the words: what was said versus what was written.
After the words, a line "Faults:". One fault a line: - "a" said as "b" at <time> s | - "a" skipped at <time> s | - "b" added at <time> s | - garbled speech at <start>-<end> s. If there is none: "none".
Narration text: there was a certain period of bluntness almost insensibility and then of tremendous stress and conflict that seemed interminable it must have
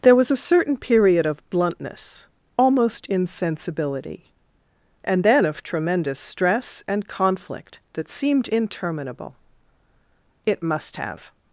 there was a certain period of bluntness almost insensibility and then of tremendous stress and conflict that seemed interminable it must have
Faults:
none